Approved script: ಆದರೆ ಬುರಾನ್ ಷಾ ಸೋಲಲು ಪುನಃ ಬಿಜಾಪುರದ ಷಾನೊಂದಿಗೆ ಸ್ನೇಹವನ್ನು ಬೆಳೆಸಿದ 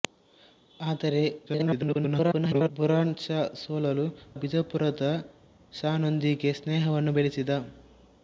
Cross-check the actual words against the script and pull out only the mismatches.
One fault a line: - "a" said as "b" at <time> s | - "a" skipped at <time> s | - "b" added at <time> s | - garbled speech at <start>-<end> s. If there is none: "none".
- garbled speech at 1.5-2.7 s
- "ಪುನಃ" skipped at 4.1 s